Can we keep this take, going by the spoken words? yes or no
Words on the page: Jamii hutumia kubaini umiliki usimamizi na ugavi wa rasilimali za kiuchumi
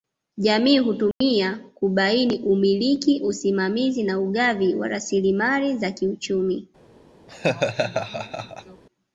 yes